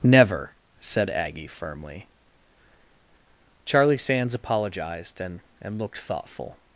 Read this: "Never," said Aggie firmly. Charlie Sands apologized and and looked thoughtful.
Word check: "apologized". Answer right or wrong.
right